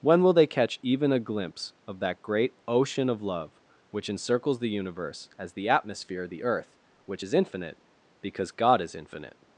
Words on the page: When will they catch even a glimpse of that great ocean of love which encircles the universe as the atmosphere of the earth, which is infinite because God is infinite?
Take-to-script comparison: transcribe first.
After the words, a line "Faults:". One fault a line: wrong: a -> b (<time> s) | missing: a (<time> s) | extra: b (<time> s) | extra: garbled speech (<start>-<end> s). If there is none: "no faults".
When will they catch even a glimpse of that great ocean of love which encircles the universe as the atmosphere of the earth, which is infinite because God is infinite?
Faults:
no faults